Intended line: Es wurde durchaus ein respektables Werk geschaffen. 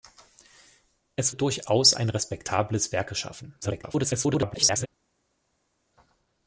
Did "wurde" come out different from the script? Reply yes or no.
yes